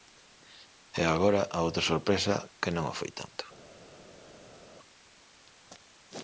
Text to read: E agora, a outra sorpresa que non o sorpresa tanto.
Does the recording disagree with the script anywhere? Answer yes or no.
yes